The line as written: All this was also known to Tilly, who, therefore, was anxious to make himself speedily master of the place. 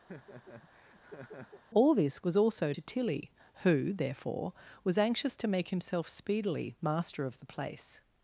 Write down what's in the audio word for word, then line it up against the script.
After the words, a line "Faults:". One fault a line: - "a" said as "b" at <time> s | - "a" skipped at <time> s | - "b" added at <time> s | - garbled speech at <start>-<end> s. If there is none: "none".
All this was also to Tilly, who, therefore, was anxious to make himself speedily master of the place.
Faults:
- "known" skipped at 2.7 s